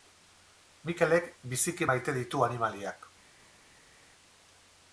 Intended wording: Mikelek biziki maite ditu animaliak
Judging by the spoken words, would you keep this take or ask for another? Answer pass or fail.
pass